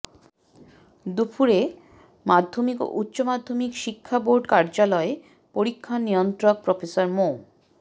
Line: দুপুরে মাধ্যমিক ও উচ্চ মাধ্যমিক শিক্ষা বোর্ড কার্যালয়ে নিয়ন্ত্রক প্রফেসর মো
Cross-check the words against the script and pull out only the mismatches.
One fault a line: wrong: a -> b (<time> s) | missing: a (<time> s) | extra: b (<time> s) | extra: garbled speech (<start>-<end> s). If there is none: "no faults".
extra: পরীক্ষা (5.6 s)